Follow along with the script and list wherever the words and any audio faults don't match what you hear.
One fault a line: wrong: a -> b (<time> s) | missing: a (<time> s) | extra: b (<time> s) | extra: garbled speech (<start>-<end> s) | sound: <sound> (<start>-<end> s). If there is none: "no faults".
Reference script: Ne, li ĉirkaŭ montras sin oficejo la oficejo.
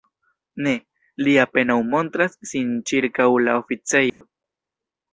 wrong: ĉirkaŭ -> apenaŭ (1.4 s)
wrong: oficejo -> ĉirkaŭ (2.9 s)
sound: dropout (4.1-4.2 s)